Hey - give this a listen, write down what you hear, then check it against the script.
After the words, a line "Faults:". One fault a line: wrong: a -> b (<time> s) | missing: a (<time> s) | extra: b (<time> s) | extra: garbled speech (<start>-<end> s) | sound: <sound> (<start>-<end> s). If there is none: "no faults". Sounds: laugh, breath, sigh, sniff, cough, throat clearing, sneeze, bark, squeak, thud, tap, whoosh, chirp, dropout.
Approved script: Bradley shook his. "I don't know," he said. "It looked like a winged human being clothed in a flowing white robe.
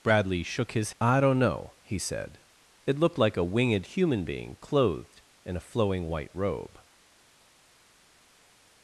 Bradley shook his. "I don't know," he said. "It looked like a winged human being clothed in a flowing white robe.
Faults:
no faults